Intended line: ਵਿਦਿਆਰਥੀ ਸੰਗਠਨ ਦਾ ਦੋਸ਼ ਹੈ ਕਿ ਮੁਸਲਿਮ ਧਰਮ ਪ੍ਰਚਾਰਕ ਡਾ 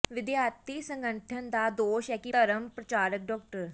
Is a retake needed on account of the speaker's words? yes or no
yes